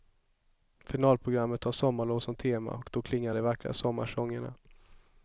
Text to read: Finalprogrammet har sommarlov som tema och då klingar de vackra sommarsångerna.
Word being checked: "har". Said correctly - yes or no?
yes